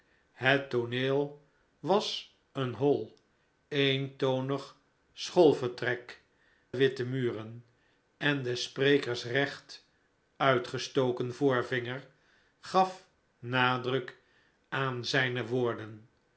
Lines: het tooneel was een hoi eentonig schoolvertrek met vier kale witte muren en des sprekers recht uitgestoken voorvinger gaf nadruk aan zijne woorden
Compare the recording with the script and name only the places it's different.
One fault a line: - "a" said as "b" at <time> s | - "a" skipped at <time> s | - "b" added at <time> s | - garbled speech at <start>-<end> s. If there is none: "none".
- "met vier kale" skipped at 6.2 s